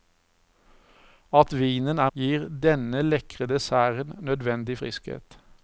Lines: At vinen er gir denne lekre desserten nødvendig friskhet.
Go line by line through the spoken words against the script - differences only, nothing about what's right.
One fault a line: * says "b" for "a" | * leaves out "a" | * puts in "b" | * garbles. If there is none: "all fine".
all fine